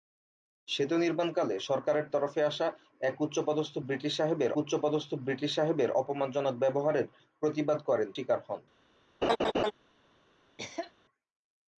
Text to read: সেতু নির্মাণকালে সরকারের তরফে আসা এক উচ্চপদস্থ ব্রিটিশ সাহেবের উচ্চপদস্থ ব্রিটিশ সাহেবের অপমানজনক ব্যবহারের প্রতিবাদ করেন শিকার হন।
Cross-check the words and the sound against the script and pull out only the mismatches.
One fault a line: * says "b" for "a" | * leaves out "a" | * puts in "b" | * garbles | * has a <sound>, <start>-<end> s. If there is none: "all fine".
* has a laugh, 9.2-9.7 s
* has a cough, 10.6-10.9 s